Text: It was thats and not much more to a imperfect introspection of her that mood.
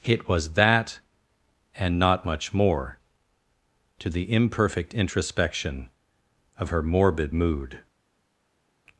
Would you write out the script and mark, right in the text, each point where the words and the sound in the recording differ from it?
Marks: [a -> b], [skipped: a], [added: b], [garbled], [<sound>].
It was [thats -> that] and not much more to [a -> the] imperfect introspection of her [that -> morbid] mood.